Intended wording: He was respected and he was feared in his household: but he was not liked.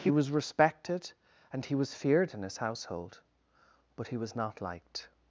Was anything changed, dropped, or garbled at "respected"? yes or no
no